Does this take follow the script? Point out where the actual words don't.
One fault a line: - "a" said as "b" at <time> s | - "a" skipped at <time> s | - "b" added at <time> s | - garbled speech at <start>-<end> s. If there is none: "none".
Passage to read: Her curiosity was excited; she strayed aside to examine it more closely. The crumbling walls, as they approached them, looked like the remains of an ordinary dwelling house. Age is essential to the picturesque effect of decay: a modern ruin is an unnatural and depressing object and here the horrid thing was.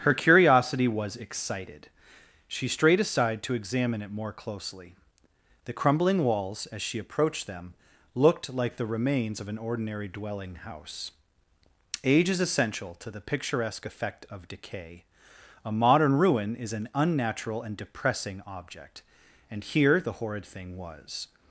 - "they" said as "she" at 6.8 s